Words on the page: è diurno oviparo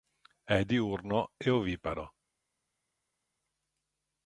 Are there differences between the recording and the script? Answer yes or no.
yes